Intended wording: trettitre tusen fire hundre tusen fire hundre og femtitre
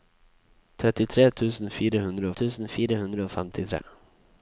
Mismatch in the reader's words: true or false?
false